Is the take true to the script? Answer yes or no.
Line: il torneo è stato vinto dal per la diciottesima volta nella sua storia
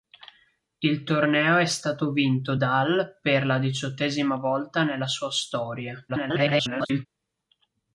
no